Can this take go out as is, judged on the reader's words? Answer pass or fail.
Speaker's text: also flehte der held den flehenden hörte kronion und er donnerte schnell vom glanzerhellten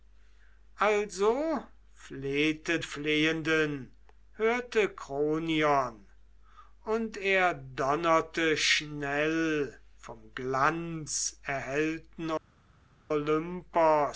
fail